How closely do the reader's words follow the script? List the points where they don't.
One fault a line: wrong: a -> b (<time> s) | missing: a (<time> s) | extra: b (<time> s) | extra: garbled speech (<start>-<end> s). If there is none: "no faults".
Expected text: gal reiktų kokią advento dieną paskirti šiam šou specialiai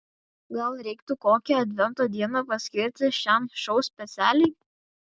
no faults